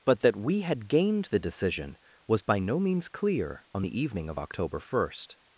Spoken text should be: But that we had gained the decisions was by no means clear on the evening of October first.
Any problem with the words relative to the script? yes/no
yes